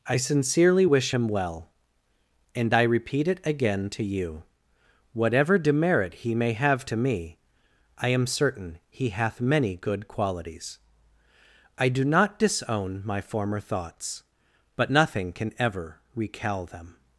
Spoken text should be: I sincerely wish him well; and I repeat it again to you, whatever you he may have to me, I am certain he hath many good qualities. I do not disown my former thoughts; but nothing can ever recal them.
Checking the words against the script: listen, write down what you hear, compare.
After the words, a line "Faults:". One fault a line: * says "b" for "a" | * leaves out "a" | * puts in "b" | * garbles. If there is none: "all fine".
I sincerely wish him well; and I repeat it again to you, whatever demerit he may have to me, I am certain he hath many good qualities. I do not disown my former thoughts; but nothing can ever recal them.
Faults:
* says "demerit" for "you"